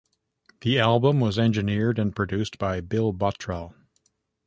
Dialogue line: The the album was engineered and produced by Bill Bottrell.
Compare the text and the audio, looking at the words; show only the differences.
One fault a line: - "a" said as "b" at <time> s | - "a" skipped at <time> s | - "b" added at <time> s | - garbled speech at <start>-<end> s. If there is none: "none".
- "the" skipped at 0.8 s